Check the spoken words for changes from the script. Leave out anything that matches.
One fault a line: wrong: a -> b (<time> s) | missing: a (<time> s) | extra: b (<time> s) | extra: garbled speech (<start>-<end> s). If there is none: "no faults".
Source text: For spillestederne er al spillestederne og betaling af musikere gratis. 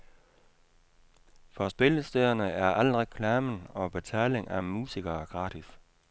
wrong: spillestederne -> reklamen (3.0 s)